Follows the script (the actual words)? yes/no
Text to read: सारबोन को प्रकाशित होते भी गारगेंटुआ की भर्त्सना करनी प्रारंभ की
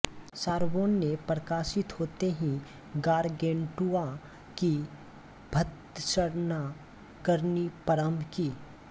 no